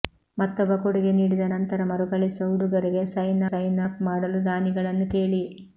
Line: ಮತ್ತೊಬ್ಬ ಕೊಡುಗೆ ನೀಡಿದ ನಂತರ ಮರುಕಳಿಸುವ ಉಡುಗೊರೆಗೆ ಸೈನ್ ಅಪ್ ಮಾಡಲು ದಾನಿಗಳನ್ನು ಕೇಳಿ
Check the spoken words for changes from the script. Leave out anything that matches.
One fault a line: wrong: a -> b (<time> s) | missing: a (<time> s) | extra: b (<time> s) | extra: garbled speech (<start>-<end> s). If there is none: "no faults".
extra: ಸೈನ್ (3.5 s)